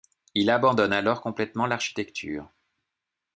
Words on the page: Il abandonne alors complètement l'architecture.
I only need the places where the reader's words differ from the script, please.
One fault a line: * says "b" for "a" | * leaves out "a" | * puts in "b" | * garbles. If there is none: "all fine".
all fine